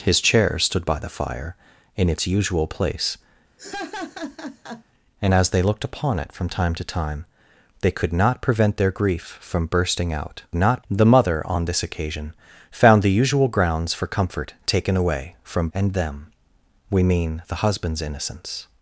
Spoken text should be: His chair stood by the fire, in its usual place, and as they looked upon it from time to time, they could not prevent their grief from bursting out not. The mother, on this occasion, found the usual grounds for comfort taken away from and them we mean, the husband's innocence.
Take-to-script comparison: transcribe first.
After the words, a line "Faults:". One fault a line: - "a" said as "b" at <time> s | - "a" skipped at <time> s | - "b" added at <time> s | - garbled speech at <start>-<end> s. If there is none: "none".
His chair stood by the fire, in its usual place, and as they looked upon it from time to time, they could not prevent their grief from bursting out not. The mother, on this occasion, found the usual grounds for comfort taken away from and them we mean, the husband's innocence.
Faults:
none